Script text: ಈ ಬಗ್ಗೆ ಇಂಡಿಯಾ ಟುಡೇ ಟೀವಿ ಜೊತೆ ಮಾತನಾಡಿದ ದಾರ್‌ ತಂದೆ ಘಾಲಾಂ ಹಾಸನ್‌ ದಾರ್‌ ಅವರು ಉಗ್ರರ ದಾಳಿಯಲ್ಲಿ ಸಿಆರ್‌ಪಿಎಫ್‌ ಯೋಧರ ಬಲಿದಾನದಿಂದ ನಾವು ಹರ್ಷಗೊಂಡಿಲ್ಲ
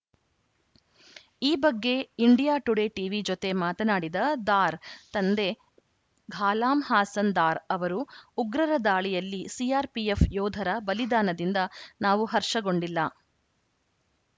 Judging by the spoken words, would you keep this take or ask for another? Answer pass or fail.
pass